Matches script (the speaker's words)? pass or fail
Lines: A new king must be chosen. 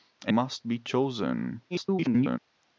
fail